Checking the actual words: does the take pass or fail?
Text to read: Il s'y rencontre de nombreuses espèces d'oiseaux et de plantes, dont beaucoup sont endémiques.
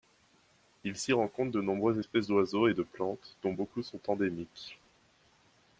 pass